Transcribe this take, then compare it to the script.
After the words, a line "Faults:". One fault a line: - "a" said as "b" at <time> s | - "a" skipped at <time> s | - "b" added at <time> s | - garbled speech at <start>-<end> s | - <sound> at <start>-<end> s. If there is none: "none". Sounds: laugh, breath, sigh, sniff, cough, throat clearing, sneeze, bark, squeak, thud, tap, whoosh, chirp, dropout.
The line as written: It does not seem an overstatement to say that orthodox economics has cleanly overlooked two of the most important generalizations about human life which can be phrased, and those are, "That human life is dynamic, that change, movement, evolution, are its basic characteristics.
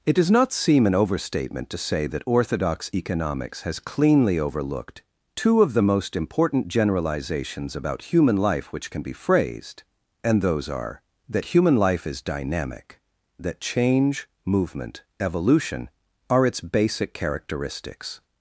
It does not seem an overstatement to say that orthodox economics has cleanly overlooked two of the most important generalizations about human life which can be phrased, and those are, "That human life is dynamic, that change, movement, evolution, are its basic characteristics.
Faults:
none